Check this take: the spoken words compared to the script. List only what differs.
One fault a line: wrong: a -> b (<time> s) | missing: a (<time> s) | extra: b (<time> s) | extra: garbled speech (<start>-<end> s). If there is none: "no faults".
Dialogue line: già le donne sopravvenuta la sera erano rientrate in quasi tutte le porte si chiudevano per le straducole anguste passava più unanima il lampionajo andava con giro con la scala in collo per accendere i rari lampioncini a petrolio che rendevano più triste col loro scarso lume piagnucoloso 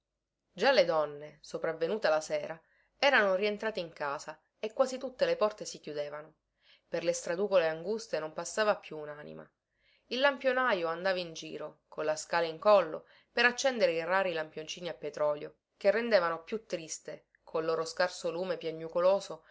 extra: casa e (3.9 s)
extra: non (8.2 s)
wrong: con -> in (11.2 s)